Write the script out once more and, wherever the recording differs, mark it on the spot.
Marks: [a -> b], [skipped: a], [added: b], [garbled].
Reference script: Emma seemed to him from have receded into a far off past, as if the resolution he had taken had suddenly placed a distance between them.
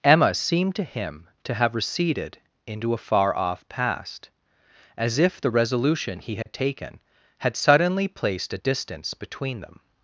Emma seemed to him [from -> to] have receded into a far off past, as if the resolution he had taken had suddenly placed a distance between them.